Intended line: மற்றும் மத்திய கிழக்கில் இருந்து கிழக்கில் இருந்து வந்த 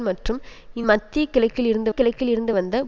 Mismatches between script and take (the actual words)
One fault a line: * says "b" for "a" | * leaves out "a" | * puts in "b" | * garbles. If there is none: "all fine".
all fine